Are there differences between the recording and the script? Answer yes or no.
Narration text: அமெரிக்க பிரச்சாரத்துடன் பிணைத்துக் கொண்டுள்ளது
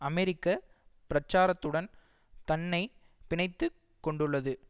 yes